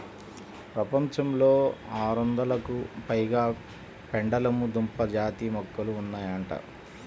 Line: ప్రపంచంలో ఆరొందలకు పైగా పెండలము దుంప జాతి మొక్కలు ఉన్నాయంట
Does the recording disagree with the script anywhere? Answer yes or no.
no